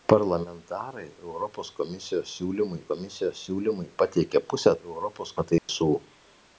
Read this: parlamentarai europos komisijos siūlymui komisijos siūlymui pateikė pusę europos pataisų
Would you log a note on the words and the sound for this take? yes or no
yes